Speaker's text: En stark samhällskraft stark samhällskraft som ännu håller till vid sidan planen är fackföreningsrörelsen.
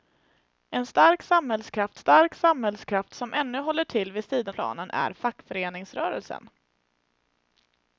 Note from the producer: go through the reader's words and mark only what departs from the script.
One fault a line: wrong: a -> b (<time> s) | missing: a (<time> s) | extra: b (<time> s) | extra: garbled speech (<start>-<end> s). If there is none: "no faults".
no faults